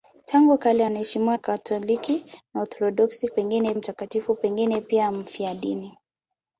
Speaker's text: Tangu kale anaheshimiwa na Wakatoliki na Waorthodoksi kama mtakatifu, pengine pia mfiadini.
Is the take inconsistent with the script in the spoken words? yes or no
yes